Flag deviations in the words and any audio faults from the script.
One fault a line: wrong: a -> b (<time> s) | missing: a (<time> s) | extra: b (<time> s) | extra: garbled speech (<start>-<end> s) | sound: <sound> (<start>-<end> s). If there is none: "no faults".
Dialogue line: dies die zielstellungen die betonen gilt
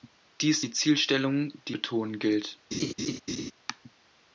sound: laugh (2.7-3.5 s)